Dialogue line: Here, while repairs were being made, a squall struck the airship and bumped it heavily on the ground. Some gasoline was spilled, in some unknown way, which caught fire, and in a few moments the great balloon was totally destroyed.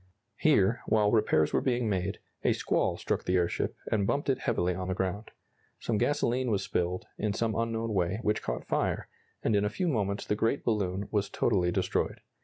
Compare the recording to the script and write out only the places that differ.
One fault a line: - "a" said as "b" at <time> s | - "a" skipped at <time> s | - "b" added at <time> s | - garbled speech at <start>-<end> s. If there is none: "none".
none